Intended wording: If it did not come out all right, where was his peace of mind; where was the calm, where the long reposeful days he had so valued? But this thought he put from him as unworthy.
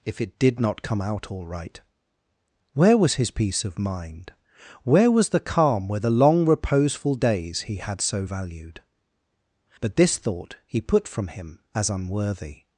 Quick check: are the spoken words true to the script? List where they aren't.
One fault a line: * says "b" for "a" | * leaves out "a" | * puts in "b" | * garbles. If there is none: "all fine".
all fine